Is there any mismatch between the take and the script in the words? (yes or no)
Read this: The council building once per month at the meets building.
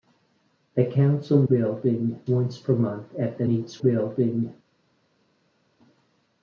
no